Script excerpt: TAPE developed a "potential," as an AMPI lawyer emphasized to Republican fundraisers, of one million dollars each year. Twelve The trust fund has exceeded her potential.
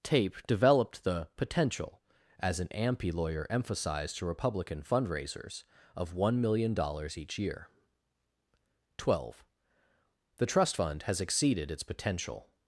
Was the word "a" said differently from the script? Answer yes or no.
yes